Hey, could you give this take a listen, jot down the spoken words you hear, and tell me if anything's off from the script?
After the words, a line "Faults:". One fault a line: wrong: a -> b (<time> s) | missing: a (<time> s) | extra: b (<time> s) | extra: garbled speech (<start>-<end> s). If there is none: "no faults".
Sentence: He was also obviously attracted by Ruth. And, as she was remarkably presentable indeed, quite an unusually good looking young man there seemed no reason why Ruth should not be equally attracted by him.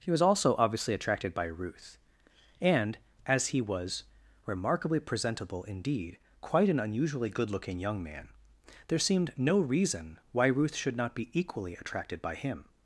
He was also obviously attracted by Ruth. And, as he was remarkably presentable indeed, quite an unusually good looking young man there seemed no reason why Ruth should not be equally attracted by him.
Faults:
wrong: she -> he (3.5 s)